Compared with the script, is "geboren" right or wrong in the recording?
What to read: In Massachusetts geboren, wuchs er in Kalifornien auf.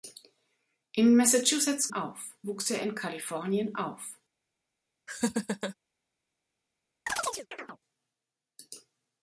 wrong